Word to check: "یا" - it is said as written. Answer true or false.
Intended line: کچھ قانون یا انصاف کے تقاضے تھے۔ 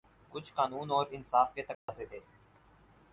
false